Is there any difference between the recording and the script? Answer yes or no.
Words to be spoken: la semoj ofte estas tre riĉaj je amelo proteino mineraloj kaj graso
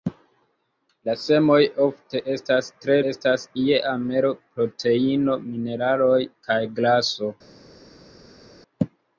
yes